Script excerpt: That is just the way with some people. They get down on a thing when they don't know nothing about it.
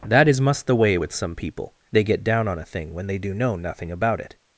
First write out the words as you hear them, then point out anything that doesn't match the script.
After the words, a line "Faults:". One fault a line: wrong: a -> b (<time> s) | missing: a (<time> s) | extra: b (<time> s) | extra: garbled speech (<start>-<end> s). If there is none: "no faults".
That is must the way with some people. They get down on a thing when they do know nothing about it.
Faults:
wrong: just -> must (0.4 s)
wrong: don't -> do (3.2 s)